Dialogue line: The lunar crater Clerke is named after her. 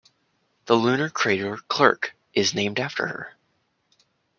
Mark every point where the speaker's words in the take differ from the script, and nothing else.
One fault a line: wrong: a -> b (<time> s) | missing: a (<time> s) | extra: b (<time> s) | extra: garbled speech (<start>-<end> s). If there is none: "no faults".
no faults